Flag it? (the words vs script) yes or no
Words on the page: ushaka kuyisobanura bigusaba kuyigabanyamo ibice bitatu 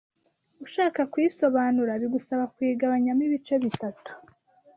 no